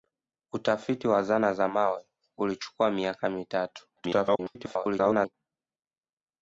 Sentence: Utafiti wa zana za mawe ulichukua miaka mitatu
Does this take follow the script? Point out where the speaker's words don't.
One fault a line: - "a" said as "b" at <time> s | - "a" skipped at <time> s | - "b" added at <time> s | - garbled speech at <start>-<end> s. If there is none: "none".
- garbled speech at 4.0-5.3 s